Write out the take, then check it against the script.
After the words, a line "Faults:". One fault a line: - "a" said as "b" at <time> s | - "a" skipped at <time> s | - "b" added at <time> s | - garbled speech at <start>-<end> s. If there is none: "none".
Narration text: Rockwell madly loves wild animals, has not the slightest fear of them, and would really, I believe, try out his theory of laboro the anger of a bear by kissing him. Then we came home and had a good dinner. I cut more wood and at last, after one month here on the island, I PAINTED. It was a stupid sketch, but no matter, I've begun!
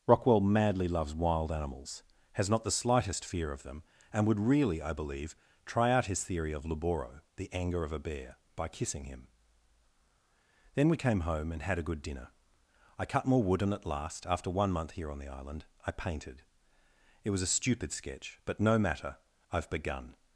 Rockwell madly loves wild animals, has not the slightest fear of them, and would really, I believe, try out his theory of laboro the anger of a bear by kissing him. Then we came home and had a good dinner. I cut more wood and at last, after one month here on the island, I PAINTED. It was a stupid sketch, but no matter, I've begun!
Faults:
none